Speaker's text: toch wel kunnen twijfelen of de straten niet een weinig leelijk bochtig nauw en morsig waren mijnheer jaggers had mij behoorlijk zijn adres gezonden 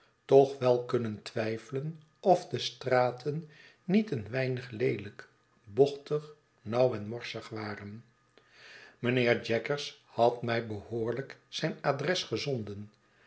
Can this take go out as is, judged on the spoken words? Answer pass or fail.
pass